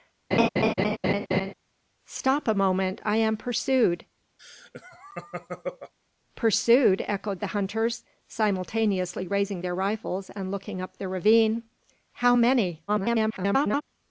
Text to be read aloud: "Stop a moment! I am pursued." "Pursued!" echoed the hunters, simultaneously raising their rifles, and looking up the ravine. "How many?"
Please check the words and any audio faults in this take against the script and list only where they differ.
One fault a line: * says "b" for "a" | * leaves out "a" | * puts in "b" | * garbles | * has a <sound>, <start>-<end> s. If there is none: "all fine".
* has a laugh, 0.3-1.5 s
* has a laugh, 4.4-5.9 s
* garbles